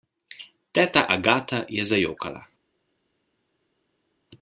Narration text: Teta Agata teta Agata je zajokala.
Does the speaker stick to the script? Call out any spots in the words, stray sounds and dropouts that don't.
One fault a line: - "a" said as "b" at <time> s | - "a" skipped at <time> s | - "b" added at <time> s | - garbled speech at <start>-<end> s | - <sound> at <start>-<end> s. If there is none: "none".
- "teta Agata" skipped at 1.6 s